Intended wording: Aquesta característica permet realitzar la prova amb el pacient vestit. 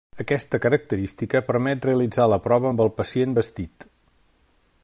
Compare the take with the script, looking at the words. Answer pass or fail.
pass